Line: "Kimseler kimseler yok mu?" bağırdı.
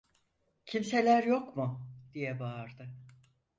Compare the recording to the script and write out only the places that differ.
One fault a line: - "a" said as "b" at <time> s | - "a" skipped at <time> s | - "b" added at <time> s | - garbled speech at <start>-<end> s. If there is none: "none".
- "kimseler" skipped at 1.2 s
- "diye" added at 2.1 s